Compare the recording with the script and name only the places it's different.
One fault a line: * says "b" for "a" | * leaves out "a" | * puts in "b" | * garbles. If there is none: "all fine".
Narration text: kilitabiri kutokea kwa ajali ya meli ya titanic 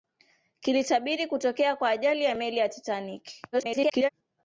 * garbles